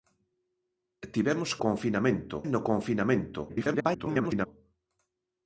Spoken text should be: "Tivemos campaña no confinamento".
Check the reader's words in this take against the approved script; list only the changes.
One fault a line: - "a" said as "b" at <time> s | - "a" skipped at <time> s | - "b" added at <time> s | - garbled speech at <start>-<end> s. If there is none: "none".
- "campaña" said as "confinamento" at 1.6 s
- garbled speech at 3.5-4.5 s